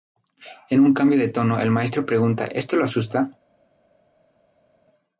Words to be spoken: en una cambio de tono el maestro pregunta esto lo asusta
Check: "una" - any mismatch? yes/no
yes